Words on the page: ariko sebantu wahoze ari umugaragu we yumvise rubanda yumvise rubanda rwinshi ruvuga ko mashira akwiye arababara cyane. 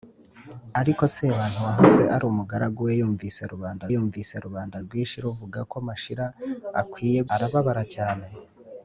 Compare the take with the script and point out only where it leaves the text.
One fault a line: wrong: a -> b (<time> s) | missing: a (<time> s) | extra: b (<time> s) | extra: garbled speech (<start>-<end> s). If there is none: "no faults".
no faults